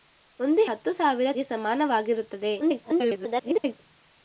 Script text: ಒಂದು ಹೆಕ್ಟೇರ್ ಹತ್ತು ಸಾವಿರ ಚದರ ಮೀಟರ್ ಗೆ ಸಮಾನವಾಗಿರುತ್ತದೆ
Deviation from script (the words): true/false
true